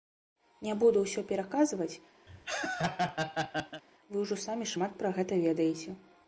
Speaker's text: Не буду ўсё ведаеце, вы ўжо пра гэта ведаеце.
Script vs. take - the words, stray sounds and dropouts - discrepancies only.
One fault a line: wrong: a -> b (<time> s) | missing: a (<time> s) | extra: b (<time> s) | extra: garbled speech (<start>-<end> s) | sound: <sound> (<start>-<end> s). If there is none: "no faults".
wrong: ведаеце -> пераказваць (1.3 s)
sound: laugh (2.3-3.8 s)
extra: самі шмат (4.5 s)